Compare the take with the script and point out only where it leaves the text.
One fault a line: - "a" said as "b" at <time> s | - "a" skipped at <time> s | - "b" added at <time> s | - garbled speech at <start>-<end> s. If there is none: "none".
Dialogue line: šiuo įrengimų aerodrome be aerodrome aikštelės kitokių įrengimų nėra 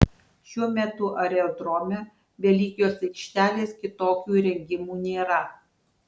- "įrengimų" said as "metu" at 0.8 s
- "aerodrome" said as "lygios" at 2.6 s